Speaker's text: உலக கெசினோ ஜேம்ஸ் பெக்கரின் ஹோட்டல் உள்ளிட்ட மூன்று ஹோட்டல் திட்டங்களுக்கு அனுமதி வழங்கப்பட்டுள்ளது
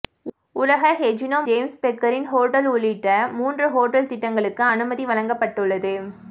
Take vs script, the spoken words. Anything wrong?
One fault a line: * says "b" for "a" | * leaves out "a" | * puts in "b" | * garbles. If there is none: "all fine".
all fine